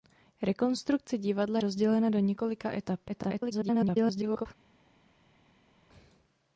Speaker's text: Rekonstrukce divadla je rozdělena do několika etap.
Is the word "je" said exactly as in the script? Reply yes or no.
no